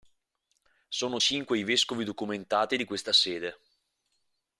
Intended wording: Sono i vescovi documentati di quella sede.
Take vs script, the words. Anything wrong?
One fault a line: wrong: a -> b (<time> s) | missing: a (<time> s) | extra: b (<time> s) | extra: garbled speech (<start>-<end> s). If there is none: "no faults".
extra: cinque (1.1 s)
wrong: quella -> questa (2.8 s)